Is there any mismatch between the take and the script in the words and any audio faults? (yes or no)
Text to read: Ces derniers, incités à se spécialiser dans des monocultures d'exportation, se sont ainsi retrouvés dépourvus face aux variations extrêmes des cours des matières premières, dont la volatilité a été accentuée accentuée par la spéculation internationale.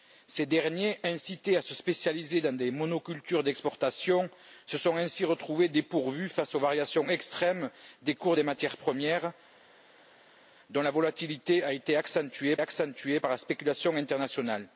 no